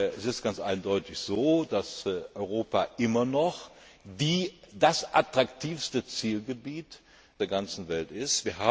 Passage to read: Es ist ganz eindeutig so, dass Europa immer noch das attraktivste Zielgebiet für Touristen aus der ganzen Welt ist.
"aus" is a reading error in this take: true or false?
true